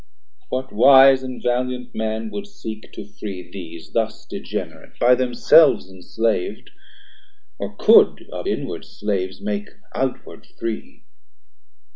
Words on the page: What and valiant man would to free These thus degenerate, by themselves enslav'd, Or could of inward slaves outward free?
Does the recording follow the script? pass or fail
fail